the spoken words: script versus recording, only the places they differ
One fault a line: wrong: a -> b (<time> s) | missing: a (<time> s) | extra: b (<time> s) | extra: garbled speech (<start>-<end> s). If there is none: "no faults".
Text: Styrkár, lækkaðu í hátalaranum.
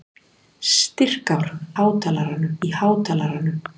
wrong: lækkaðu -> hátalaranum (1.8 s)